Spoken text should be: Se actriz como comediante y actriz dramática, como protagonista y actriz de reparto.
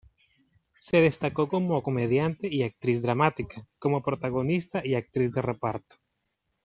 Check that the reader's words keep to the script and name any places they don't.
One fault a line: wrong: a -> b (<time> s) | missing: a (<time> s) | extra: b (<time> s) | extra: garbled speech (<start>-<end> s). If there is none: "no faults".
wrong: actriz -> destacó (1.0 s)